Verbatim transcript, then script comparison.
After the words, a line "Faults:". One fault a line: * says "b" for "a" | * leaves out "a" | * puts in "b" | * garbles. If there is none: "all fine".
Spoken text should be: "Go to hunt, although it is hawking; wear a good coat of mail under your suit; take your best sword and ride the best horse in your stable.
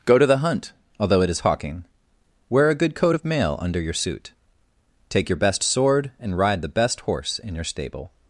"Go to the hunt, although it is hawking; wear a good coat of mail under your suit; take your best sword and ride the best horse in your stable.
Faults:
* puts in "the"